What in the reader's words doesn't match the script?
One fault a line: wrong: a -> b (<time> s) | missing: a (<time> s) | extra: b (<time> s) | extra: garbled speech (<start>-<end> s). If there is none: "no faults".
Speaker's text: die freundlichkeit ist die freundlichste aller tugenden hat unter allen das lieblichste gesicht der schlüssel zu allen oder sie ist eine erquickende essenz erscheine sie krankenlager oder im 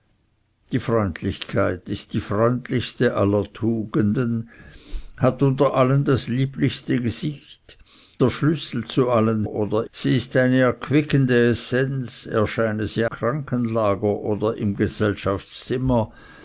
no faults